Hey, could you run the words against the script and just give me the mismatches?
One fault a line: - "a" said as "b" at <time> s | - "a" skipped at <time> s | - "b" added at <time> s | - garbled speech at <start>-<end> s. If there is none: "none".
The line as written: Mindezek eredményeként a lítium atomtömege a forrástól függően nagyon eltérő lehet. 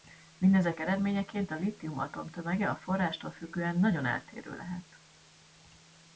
none